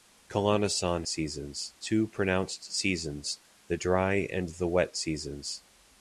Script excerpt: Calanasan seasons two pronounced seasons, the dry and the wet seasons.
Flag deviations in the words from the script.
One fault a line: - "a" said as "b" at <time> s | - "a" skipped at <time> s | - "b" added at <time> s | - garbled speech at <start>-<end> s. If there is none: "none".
none